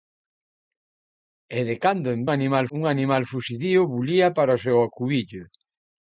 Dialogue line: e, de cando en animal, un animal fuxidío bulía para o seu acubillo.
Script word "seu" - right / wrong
right